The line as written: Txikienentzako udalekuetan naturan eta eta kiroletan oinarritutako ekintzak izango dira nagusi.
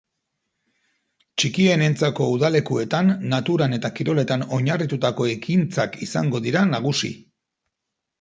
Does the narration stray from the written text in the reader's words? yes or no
yes